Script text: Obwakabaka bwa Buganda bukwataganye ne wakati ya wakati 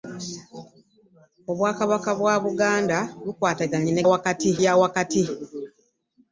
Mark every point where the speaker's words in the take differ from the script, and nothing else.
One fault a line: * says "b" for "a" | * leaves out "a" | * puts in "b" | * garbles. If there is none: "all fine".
all fine